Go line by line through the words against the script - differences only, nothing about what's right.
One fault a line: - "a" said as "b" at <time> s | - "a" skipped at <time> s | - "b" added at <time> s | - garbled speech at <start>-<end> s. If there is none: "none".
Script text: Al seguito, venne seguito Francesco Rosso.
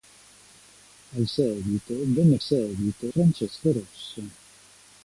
none